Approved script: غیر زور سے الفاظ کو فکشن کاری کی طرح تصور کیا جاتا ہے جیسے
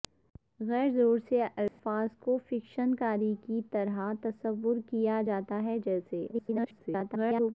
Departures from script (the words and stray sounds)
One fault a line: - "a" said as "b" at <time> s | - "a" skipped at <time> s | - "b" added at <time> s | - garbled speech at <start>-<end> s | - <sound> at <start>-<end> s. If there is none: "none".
- dropout at 1.7-1.8 s
- garbled speech at 6.3-7.5 s